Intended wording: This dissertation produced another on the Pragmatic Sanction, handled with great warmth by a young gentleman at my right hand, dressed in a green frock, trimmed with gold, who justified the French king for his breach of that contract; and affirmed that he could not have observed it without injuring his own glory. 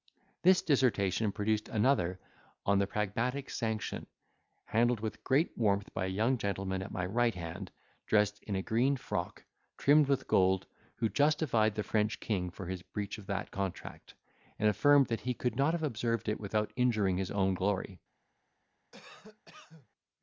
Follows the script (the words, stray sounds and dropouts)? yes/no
no